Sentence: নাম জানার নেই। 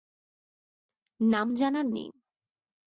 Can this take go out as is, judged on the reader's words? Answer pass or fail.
pass